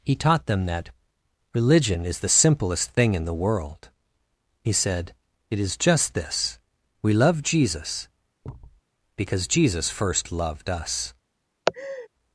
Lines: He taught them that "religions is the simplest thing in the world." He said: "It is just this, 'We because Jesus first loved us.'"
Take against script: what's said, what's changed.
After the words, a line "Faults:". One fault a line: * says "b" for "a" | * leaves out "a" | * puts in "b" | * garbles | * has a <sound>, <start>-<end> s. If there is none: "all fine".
He taught them that "religion is the simplest thing in the world." He said: "It is just this, 'We love Jesus, because Jesus first loved us.'"
Faults:
* says "religion" for "religions"
* puts in "love Jesus"
* has a thud, 8.4-8.8 s
* has a laugh, 11.7-12.1 s